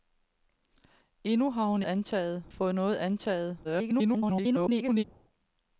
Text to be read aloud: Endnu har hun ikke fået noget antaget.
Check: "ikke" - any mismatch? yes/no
yes